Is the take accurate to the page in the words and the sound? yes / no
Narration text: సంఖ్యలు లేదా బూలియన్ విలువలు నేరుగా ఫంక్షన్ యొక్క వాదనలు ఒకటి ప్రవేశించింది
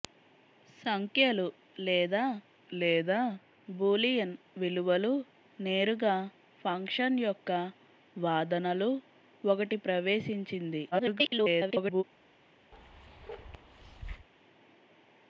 no